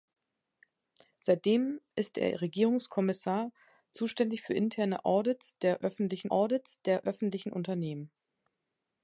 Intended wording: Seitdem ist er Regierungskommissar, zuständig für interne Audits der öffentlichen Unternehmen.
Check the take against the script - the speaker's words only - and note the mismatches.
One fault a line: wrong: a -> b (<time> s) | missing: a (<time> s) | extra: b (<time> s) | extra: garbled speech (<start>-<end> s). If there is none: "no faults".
extra: Audits der öffentlichen (6.3 s)